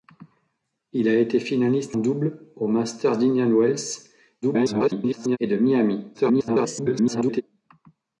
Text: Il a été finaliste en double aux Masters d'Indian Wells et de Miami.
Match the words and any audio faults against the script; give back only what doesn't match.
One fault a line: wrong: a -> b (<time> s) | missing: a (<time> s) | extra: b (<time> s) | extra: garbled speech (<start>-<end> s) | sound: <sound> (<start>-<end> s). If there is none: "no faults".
missing: en (2.0 s)
extra: garbled speech (4.4-5.4 s)
extra: garbled speech (6.1-7.4 s)